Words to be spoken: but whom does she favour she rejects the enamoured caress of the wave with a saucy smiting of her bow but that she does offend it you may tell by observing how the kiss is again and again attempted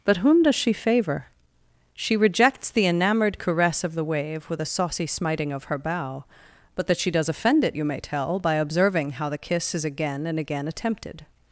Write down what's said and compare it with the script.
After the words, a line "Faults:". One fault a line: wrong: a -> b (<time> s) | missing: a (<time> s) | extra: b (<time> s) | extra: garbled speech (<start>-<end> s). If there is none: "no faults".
but whom does she favour she rejects the enamoured caress of the wave with a saucy smiting of her bow but that she does offend it you may tell by observing how the kiss is again and again attempted
Faults:
no faults